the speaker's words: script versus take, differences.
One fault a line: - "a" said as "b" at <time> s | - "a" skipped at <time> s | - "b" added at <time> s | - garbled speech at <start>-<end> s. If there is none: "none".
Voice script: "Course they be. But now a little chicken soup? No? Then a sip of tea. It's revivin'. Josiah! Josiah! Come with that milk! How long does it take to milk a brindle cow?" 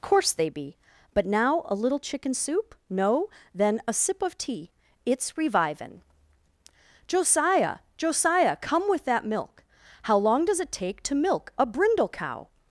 none